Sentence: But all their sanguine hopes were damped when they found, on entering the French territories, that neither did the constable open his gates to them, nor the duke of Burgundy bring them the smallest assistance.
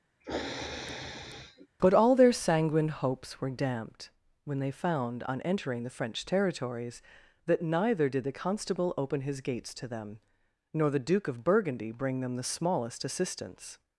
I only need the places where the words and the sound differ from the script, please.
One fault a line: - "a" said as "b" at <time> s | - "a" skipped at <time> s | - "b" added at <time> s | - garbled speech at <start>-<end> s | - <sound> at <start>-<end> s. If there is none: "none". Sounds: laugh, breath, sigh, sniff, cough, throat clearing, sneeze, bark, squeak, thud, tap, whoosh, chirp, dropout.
- sniff at 0.2-1.7 s